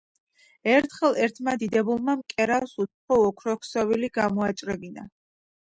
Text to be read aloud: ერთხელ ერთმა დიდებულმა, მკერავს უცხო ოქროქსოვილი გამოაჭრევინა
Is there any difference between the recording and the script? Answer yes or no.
no